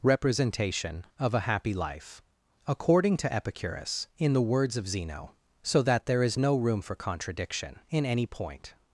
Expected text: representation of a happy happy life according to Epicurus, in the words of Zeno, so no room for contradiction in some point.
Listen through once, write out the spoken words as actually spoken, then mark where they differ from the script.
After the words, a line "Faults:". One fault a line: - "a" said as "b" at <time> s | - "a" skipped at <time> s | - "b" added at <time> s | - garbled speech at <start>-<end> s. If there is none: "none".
representation of a happy life according to Epicurus, in the words of Zeno, so that there is no room for contradiction in any point.
Faults:
- "happy" skipped at 1.7 s
- "that there is" added at 5.8 s
- "some" said as "any" at 8.1 s